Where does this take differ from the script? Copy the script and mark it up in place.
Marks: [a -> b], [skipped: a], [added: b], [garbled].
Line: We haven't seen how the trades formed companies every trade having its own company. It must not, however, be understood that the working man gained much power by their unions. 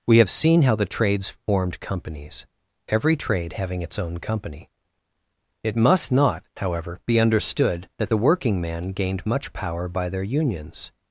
We [haven't -> have] seen how the trades formed companies every trade having its own company. It must not, however, be understood that the working man gained much power by their unions.